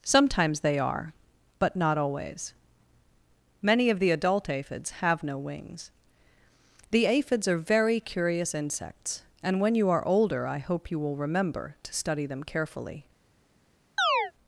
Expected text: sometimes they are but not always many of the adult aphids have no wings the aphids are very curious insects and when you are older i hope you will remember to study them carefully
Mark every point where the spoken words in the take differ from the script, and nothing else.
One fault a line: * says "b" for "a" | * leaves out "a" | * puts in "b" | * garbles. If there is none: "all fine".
all fine